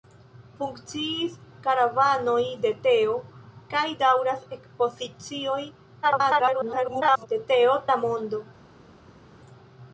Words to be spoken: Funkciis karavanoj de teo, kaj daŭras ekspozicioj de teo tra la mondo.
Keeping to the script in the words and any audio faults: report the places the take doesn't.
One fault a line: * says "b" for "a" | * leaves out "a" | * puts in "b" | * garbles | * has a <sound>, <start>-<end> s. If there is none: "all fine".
* garbles
* leaves out "tra"